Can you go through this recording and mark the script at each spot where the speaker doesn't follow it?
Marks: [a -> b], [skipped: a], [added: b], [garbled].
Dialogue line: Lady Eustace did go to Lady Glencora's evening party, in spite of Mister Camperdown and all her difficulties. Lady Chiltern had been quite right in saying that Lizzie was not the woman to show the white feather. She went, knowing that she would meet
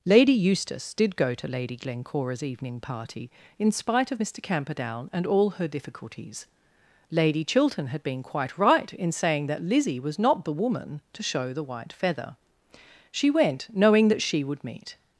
Lady Eustace did go to Lady Glencora's evening party, in spite of Mister Camperdown and all her difficulties. Lady Chiltern had been quite right in saying that Lizzie was not the woman to show the white feather. She went, knowing that she would meet